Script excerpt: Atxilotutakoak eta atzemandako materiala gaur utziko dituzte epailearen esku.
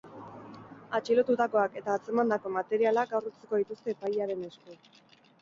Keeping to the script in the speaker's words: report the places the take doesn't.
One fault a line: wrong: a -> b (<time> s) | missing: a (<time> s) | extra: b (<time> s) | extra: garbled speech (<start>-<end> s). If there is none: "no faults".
no faults